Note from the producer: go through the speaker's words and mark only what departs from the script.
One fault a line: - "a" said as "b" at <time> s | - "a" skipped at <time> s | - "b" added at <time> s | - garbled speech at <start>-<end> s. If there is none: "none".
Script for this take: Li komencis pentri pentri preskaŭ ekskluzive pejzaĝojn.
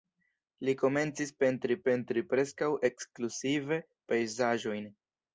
none